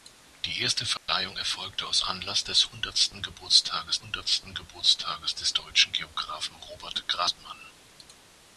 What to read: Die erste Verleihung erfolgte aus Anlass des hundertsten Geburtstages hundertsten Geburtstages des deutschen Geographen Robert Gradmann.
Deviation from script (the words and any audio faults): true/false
true